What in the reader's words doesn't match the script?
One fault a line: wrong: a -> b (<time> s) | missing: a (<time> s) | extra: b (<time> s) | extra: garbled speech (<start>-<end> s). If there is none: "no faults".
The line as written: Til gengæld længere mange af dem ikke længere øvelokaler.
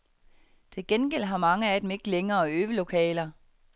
wrong: længere -> har (1.2 s)